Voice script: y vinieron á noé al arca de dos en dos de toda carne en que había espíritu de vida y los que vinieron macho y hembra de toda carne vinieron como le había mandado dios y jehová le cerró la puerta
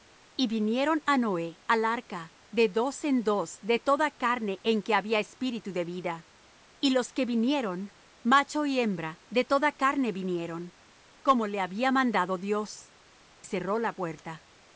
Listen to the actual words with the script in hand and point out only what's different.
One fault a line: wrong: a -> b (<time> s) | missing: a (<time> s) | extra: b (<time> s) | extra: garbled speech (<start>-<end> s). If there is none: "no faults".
missing: y jehová le (12.9 s)